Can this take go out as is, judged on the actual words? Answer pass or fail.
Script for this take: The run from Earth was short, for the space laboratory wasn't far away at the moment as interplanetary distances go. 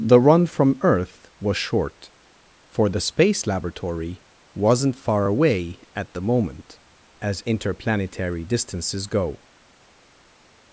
pass